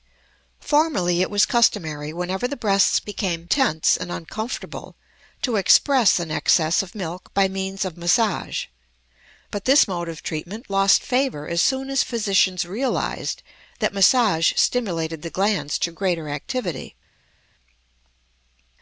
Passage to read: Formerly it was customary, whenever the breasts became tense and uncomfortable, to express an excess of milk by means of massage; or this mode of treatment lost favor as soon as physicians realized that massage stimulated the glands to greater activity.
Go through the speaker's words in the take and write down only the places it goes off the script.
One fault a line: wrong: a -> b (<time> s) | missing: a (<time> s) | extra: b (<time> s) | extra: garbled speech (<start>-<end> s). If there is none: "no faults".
wrong: or -> but (9.5 s)